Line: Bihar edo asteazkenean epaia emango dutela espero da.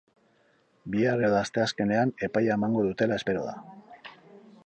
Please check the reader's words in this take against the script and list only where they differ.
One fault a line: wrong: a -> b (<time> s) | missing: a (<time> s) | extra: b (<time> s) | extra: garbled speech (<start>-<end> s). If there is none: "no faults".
no faults